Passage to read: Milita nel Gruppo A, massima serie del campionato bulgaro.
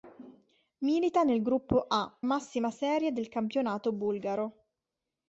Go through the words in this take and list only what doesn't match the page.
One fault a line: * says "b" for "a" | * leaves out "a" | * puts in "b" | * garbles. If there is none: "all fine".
all fine